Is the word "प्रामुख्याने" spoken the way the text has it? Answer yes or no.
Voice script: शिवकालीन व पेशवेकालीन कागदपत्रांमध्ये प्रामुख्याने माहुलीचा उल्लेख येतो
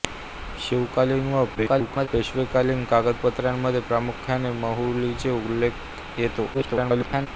yes